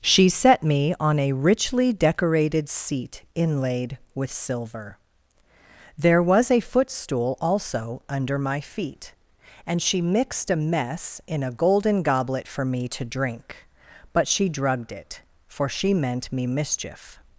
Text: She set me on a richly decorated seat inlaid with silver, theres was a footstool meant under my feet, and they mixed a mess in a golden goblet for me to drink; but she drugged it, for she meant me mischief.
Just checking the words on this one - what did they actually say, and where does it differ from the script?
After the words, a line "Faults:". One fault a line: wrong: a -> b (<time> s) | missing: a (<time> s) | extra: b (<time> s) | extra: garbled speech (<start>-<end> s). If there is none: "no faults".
She set me on a richly decorated seat inlaid with silver, there was a footstool also under my feet, and she mixed a mess in a golden goblet for me to drink; but she drugged it, for she meant me mischief.
Faults:
wrong: theres -> there (6.0 s)
wrong: meant -> also (7.4 s)
wrong: they -> she (9.8 s)